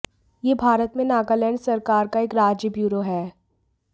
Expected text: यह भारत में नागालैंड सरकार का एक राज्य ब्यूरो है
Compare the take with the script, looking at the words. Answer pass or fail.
pass